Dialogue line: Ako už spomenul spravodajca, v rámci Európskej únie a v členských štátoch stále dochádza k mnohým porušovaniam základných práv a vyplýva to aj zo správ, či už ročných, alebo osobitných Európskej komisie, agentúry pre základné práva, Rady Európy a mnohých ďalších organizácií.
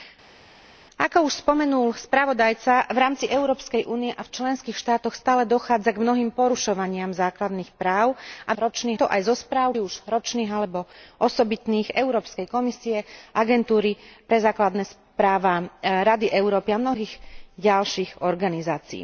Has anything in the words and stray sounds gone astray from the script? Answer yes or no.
yes